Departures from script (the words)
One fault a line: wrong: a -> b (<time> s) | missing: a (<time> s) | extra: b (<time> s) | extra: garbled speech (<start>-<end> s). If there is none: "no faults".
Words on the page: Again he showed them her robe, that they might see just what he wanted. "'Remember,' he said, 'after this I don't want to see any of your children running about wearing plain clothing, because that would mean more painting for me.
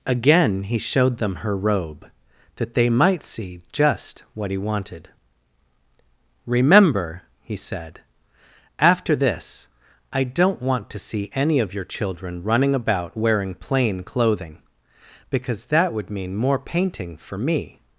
no faults